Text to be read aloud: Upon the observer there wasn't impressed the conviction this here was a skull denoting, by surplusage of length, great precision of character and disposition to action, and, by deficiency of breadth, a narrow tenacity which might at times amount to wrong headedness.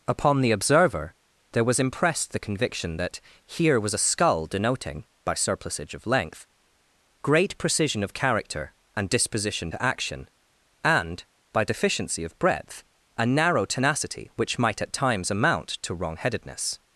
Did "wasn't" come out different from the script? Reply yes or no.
yes